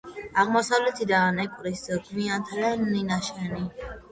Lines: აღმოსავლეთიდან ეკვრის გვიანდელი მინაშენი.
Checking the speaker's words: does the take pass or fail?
pass